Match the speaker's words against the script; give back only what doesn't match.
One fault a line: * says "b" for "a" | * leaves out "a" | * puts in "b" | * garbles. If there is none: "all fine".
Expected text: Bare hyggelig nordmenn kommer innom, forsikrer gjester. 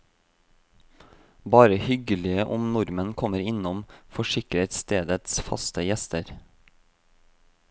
* puts in "om"
* puts in "stedets faste"